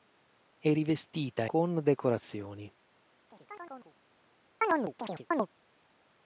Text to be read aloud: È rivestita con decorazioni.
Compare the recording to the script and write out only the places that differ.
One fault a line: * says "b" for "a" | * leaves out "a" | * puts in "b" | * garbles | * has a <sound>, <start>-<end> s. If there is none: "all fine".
* has a chirp, 3.3-3.9 s
* has a chirp, 4.6-5.5 s